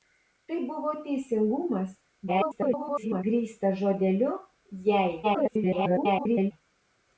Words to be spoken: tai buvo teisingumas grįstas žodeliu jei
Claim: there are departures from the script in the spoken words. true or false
true